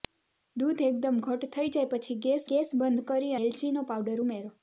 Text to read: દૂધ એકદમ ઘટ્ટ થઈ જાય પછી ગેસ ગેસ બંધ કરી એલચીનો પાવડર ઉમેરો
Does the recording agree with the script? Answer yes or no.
yes